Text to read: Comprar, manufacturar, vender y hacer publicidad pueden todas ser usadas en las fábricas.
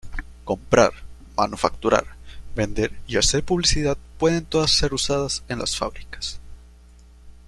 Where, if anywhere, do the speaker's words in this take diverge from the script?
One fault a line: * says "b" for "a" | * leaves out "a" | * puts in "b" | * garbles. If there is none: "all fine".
all fine